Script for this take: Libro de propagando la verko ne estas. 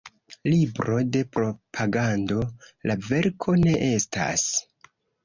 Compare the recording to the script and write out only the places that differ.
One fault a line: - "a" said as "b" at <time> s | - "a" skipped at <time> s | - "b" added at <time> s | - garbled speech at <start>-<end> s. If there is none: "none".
none